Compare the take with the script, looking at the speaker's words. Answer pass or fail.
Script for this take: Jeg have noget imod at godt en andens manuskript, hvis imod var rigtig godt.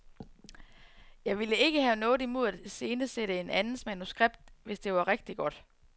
fail